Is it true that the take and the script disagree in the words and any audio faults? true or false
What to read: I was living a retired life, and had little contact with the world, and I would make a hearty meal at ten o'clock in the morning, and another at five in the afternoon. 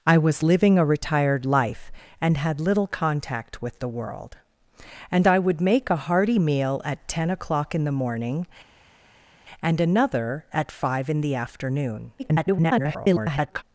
true